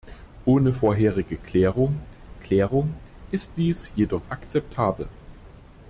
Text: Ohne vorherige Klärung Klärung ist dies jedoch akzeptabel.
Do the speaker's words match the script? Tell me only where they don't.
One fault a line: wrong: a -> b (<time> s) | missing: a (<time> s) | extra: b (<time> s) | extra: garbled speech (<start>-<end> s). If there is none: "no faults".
no faults